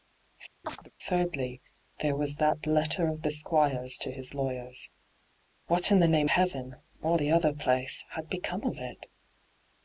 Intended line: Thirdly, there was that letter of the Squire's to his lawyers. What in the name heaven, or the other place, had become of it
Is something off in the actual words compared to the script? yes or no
no